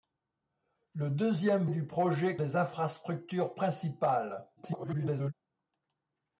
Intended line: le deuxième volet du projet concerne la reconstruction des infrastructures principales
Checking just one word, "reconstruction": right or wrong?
wrong